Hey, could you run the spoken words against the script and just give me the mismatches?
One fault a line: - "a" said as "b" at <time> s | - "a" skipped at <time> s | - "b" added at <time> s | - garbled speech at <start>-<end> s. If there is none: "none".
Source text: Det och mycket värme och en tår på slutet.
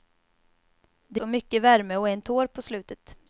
none